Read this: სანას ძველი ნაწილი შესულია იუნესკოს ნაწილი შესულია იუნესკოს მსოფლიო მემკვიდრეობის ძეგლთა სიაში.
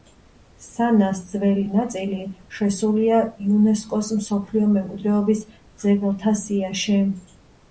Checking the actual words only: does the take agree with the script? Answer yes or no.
no